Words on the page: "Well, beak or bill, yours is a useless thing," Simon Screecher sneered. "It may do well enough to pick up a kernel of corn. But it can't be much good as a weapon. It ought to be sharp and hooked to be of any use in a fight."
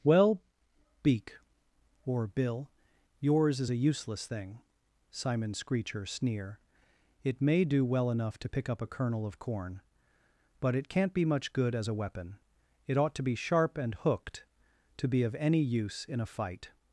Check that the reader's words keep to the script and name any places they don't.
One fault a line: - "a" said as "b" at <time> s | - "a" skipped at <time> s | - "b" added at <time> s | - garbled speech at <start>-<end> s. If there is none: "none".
- "sneered" said as "sneer" at 6.0 s